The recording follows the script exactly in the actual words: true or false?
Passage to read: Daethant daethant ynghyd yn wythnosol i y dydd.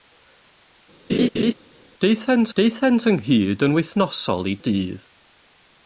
true